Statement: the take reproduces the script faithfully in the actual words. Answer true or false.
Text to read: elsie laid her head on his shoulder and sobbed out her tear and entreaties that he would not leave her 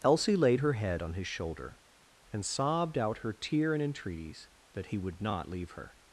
true